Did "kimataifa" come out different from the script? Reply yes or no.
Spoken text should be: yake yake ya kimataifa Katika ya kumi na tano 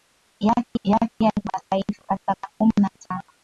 no